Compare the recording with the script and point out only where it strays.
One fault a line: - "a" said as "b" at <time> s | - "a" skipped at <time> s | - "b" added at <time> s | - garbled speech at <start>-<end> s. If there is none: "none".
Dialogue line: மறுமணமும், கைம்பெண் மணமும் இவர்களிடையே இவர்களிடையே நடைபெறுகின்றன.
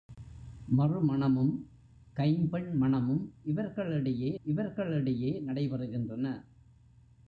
none